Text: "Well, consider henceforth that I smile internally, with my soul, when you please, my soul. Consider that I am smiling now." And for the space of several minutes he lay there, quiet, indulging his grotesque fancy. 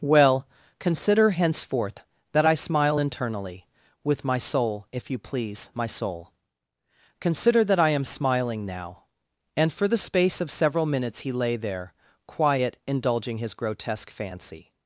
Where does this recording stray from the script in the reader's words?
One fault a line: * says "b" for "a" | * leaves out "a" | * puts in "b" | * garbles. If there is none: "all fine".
* says "if" for "when"